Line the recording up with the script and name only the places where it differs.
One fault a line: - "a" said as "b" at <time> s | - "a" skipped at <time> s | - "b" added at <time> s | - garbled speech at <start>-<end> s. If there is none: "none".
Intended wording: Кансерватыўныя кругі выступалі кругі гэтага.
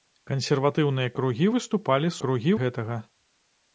none